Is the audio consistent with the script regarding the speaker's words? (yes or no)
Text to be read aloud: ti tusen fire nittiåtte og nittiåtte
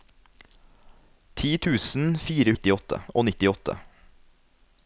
yes